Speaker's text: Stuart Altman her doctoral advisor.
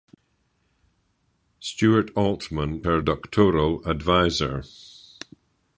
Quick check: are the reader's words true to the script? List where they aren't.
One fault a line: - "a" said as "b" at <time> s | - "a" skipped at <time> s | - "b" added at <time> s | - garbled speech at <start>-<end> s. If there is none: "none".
none